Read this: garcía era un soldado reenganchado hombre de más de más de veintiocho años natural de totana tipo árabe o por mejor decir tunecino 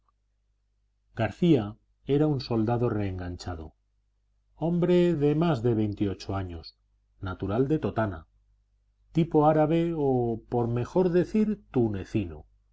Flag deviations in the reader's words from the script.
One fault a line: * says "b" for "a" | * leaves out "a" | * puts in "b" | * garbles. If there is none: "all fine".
* leaves out "más de"